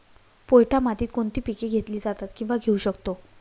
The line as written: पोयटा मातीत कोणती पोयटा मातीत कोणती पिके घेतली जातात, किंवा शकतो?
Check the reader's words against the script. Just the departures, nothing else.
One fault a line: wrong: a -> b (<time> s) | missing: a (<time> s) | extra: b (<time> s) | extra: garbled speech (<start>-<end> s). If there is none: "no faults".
missing: पोयटा मातीत कोणती (1.4 s)
extra: घेऊ (2.6 s)